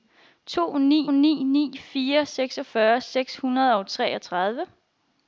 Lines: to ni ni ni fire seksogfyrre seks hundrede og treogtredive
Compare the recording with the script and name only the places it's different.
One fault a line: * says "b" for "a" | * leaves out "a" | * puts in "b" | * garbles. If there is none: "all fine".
all fine